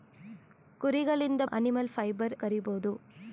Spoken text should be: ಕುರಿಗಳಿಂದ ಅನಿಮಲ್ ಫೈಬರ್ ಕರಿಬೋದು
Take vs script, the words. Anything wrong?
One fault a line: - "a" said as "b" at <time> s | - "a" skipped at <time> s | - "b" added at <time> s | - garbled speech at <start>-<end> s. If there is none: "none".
none